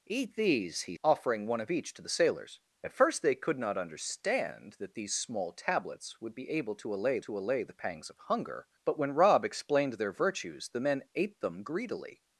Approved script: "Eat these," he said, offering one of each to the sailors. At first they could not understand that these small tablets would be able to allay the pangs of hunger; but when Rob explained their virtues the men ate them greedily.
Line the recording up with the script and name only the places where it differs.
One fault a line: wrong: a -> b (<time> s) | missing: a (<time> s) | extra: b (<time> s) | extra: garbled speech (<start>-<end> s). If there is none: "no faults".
missing: said (1.0 s)
extra: to allay (7.2 s)